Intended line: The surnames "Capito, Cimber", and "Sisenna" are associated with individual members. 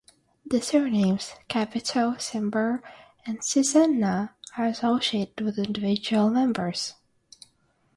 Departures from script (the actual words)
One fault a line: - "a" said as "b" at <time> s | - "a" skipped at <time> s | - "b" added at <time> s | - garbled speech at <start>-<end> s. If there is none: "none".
none